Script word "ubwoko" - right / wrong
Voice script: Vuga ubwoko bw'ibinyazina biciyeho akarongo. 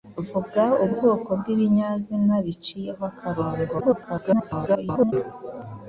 right